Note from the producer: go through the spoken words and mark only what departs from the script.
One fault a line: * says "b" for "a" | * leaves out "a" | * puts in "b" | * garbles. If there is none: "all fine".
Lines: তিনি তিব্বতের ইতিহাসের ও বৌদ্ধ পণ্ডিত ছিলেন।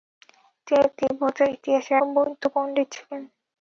all fine